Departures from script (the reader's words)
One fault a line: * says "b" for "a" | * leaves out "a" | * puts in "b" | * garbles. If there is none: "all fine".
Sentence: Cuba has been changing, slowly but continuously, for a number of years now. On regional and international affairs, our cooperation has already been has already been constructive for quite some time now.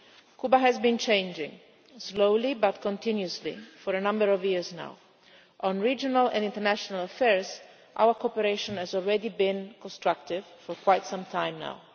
* leaves out "has already been"